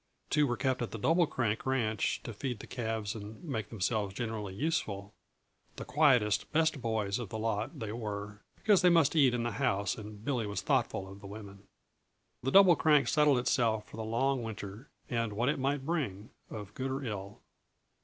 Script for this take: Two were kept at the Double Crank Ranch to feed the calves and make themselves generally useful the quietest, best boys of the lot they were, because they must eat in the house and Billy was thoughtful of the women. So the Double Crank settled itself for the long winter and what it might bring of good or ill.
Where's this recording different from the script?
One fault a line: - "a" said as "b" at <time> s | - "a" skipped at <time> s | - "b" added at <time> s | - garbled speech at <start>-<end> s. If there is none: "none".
- "So" skipped at 11.7 s